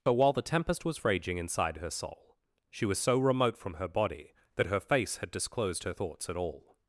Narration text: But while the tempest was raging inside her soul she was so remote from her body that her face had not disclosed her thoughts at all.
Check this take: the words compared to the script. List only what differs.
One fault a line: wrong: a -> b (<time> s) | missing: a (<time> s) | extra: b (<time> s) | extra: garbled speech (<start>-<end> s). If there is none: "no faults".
missing: not (5.3 s)